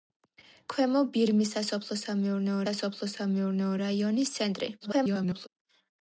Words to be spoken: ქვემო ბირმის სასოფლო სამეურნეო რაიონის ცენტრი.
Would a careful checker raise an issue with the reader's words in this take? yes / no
yes